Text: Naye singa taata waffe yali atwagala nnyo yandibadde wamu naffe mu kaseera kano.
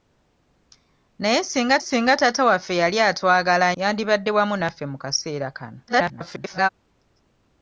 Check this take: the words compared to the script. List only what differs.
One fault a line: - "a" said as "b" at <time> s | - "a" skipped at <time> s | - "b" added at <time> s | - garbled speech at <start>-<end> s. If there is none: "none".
- "singa" added at 1.8 s
- "nnyo" skipped at 3.7 s
- garbled speech at 5.9-6.7 s